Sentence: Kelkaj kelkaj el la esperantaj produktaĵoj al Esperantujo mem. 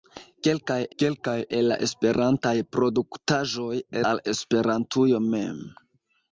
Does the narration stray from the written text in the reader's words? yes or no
no